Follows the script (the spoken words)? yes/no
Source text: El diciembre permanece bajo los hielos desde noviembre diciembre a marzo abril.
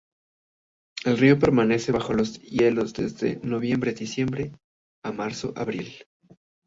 no